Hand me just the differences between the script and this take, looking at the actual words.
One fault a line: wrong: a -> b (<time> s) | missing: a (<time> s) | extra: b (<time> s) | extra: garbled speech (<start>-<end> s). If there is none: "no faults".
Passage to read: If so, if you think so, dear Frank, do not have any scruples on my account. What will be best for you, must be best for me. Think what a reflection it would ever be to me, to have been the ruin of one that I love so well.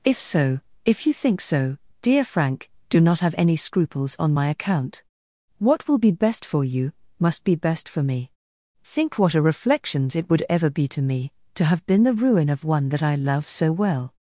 wrong: reflection -> reflections (9.4 s)